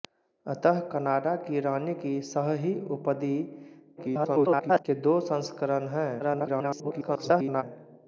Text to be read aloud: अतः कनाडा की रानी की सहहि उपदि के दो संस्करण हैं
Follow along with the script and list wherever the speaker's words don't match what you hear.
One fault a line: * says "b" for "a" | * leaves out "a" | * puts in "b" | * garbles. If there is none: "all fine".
* garbles
* garbles